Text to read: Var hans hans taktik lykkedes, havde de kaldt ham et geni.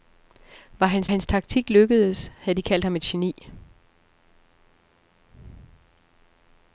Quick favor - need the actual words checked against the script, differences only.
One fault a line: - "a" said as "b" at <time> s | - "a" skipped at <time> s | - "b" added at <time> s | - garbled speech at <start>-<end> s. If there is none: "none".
none